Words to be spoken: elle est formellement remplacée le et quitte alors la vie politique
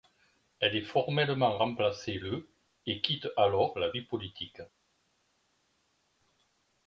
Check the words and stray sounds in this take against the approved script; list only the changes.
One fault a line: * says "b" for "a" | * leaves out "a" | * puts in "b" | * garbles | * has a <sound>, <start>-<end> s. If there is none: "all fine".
all fine